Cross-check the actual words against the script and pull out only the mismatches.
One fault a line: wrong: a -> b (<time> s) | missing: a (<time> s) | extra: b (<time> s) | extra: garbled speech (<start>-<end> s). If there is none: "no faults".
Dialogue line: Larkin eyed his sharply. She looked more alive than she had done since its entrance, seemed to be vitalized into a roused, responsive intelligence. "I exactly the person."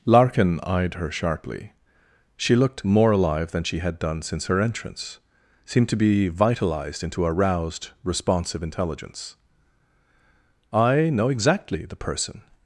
wrong: his -> her (0.9 s)
wrong: its -> her (4.5 s)
extra: know (11.1 s)